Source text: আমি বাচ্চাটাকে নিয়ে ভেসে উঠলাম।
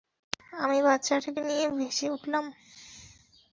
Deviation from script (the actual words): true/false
false